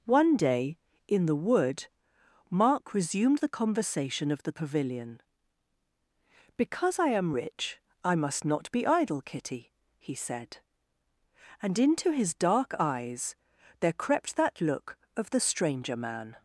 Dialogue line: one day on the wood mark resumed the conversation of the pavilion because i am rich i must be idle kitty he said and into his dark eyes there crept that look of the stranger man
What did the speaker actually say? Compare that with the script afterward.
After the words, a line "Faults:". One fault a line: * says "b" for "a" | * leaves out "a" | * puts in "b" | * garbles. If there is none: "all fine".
one day in the wood mark resumed the conversation of the pavilion because i am rich i must not be idle kitty he said and into his dark eyes there crept that look of the stranger man
Faults:
* says "in" for "on"
* puts in "not"